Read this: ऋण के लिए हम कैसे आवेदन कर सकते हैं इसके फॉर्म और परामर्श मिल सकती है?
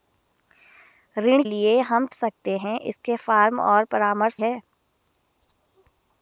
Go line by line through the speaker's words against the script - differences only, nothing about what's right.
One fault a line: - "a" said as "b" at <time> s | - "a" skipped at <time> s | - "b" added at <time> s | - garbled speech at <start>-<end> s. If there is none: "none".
- "के" skipped at 1.4 s
- "कैसे आवेदन कर" skipped at 2.1 s
- "मिल सकती" skipped at 4.4 s